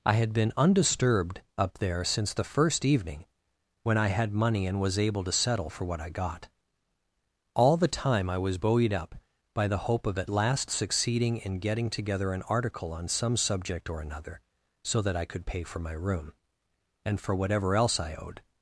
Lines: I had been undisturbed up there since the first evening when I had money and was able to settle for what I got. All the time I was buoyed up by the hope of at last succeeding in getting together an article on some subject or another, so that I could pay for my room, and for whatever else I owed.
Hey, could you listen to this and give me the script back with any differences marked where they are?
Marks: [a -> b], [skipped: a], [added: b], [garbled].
I had been undisturbed up there since the first evening when I had money and was able to settle for what I got. All the time I was buoyed up by the hope of at last succeeding in getting together an article on some subject or another, so that I could pay for my room, and for whatever else I owed.